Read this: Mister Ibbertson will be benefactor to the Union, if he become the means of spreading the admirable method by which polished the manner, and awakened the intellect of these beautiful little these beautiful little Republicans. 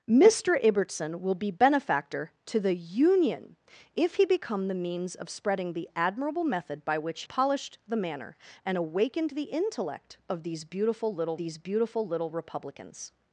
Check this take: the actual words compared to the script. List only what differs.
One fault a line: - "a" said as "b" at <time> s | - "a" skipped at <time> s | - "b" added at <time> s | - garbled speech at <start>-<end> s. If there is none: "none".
none